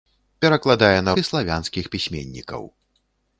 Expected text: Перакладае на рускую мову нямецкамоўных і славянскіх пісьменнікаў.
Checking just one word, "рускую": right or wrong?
wrong